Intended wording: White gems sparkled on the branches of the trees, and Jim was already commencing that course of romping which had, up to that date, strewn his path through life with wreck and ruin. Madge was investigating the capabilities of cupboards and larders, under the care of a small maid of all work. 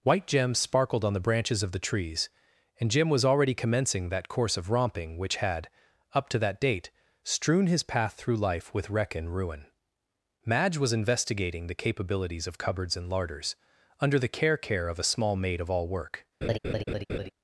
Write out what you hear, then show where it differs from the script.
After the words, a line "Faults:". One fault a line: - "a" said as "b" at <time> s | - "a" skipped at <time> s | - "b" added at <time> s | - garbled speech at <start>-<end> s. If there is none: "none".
White gems sparkled on the branches of the trees, and Jim was already commencing that course of romping which had, up to that date, strewn his path through life with wreck and ruin. Madge was investigating the capabilities of cupboards and larders, under the care care of a small maid of all work.
Faults:
- "care" added at 14.6 s